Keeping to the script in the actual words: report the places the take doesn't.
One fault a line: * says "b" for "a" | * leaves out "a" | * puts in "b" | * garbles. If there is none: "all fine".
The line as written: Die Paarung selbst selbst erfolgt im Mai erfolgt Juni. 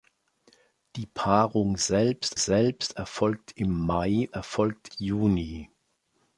all fine